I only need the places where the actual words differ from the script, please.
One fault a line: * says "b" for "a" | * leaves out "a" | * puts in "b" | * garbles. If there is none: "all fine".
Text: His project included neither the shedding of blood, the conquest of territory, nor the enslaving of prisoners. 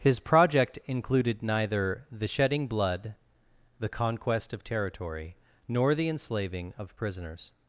* leaves out "of"